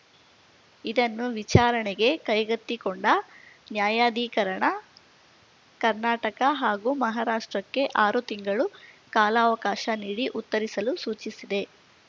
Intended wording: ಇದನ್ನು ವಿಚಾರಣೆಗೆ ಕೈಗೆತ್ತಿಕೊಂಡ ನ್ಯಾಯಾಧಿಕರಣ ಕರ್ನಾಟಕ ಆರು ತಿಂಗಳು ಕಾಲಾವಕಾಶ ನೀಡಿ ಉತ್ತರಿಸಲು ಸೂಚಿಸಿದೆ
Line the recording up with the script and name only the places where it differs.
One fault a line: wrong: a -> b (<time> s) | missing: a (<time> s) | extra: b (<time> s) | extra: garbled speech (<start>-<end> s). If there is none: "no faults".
extra: ಹಾಗೂ ಮಹಾರಾಷ್ಟ್ರಕ್ಕೆ (6.6 s)